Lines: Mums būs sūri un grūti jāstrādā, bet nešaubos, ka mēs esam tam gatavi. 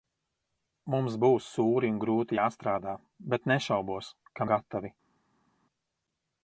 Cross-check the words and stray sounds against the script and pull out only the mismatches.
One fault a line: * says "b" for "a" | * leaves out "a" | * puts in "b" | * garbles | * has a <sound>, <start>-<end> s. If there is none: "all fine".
* leaves out "mēs esam tam"